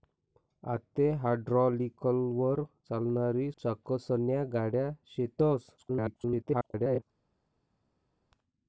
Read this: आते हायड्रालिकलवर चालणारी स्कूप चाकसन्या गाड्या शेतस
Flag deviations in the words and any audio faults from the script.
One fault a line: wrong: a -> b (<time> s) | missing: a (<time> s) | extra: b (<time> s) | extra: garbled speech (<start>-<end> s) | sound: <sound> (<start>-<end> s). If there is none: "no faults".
missing: स्कूप (3.5 s)
extra: garbled speech (5.8-7.0 s)